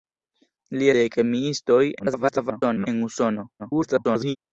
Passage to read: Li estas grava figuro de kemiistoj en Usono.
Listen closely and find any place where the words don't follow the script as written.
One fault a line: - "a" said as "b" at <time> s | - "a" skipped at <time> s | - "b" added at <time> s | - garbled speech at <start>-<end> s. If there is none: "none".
- "estas grava figuro" skipped at 0.9 s
- garbled speech at 2.0-2.9 s
- garbled speech at 3.6-4.4 s